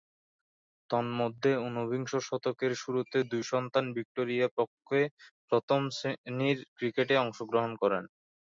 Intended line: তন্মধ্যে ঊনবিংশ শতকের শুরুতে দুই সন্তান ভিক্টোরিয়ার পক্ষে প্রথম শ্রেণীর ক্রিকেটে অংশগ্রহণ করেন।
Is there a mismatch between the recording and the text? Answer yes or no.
no